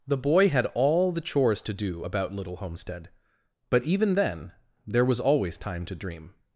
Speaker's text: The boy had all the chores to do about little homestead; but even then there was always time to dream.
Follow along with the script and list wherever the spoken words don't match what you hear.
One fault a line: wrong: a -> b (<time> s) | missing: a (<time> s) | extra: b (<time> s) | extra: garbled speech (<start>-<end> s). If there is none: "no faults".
no faults